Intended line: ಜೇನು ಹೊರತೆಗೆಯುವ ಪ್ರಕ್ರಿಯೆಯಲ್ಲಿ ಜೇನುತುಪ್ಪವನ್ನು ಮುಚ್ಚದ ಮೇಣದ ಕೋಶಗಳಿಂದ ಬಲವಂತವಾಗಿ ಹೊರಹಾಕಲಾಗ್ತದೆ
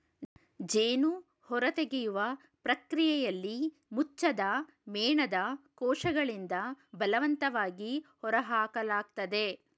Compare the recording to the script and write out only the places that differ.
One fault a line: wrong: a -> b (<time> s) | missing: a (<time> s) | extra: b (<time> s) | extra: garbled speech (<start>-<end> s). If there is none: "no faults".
missing: ಜೇನುತುಪ್ಪವನ್ನು (3.6 s)